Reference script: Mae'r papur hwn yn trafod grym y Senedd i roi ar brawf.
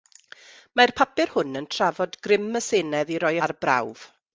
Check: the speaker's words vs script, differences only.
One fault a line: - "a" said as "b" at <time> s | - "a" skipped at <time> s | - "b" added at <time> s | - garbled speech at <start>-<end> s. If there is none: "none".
none